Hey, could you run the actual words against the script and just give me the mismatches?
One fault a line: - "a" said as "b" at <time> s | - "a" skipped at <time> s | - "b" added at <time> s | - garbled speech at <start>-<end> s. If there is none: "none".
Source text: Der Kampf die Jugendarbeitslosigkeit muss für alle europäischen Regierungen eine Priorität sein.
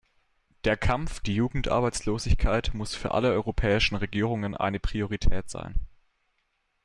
none